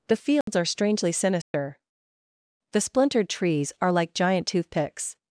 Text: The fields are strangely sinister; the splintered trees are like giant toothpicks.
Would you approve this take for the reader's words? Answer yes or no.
yes